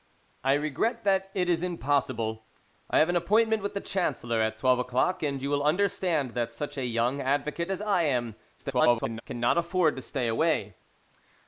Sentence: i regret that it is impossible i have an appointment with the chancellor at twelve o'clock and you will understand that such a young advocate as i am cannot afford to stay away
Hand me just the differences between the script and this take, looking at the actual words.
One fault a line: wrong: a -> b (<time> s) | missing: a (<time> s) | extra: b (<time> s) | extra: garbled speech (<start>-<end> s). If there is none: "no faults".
extra: garbled speech (8.6-9.2 s)